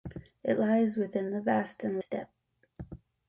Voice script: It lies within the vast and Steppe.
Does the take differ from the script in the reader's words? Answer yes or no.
no